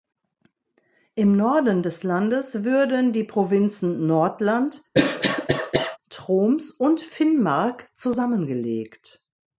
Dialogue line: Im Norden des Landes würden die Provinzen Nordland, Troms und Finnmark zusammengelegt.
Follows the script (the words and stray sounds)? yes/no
no